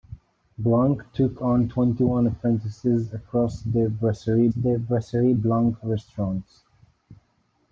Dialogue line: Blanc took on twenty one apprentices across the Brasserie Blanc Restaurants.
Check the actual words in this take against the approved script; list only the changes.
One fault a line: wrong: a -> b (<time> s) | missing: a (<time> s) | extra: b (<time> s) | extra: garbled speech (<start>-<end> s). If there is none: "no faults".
extra: the Brasserie (4.5 s)